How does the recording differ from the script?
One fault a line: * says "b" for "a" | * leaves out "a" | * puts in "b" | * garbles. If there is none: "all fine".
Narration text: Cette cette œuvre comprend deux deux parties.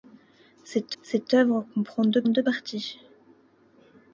all fine